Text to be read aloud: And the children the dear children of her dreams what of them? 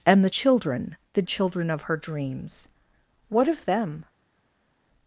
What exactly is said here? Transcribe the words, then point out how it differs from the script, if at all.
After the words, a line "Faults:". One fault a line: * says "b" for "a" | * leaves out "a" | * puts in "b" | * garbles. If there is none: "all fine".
And the children the children of her dreams what of them?
Faults:
* leaves out "dear"